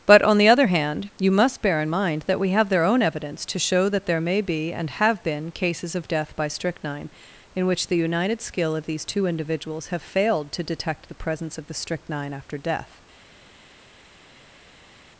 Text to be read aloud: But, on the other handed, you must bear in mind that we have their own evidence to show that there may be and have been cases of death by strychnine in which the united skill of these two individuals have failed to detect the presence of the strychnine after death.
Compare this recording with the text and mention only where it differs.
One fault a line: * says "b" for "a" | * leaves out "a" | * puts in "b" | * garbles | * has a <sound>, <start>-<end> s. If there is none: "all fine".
* says "hand" for "handed"